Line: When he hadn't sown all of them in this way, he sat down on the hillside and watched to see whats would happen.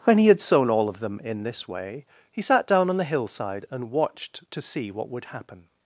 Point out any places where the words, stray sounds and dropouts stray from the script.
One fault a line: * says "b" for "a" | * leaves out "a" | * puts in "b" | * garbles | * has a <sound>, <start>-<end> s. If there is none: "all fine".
* says "had" for "hadn't"
* says "what" for "whats"